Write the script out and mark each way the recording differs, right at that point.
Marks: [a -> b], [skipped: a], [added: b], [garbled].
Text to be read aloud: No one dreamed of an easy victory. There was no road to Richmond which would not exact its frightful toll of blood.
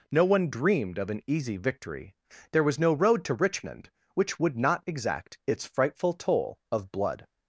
No one dreamed of an easy victory. There was no road to Richmond which would not exact its frightful toll of blood.